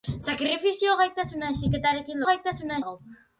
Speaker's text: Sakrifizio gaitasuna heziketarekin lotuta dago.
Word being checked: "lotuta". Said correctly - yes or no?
no